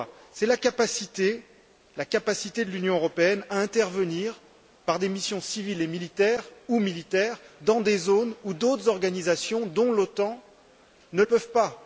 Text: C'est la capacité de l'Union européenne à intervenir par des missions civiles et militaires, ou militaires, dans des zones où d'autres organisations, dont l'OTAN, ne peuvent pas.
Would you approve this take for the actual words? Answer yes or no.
yes